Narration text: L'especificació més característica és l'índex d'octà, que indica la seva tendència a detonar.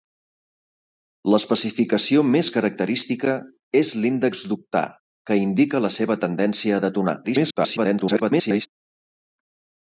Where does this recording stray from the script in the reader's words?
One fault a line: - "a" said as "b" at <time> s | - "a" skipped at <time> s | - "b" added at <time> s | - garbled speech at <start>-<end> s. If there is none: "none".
- garbled speech at 7.2-8.7 s